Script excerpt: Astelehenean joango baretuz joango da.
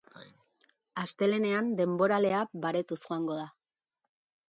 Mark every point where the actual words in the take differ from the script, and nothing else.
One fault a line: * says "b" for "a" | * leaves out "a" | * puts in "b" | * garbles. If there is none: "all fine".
* says "denboralea" for "joango"